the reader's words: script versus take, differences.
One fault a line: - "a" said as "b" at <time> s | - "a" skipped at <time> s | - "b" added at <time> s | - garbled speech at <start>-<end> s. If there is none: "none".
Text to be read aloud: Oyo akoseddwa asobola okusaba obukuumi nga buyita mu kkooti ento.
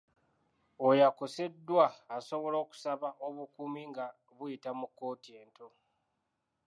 none